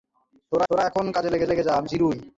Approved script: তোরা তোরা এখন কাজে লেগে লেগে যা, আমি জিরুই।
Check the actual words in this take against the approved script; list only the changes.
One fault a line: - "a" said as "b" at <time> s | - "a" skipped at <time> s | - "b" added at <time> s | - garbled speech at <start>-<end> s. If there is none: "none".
none